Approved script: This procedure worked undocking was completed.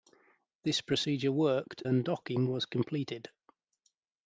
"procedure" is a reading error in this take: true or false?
false